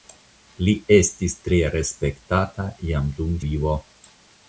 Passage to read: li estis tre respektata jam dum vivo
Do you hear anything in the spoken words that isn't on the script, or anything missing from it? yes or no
no